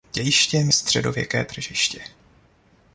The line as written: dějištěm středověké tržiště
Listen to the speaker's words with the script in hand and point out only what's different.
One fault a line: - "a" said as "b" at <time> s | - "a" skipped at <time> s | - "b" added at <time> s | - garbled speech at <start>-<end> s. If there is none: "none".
none